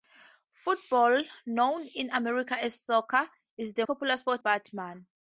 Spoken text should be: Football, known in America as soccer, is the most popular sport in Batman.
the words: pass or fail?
fail